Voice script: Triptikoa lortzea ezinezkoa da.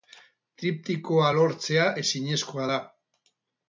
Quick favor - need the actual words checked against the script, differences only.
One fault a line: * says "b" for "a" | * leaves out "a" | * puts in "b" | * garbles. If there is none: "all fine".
all fine